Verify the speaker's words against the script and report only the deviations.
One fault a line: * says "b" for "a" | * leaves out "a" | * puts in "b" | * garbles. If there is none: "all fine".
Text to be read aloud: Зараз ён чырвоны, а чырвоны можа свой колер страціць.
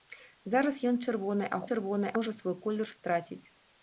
all fine